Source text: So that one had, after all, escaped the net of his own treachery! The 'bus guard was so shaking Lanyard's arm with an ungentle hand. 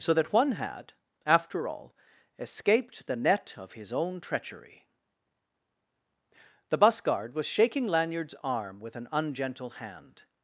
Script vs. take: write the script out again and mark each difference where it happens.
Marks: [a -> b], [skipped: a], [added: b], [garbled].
So that one had, after all, escaped the net of his own treachery! The 'bus guard was [skipped: so] shaking Lanyard's arm with an ungentle hand.